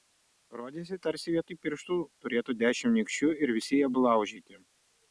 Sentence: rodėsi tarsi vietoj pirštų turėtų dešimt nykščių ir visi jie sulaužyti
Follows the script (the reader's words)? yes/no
yes